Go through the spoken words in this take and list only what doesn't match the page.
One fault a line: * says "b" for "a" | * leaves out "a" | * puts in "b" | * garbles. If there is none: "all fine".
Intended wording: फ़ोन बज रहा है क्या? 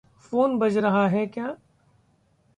all fine